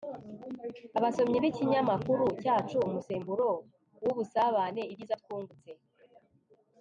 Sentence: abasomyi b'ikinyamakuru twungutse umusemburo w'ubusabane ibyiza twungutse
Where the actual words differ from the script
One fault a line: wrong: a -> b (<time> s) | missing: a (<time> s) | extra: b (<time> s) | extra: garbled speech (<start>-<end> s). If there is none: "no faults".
wrong: twungutse -> cyacu (2.4 s)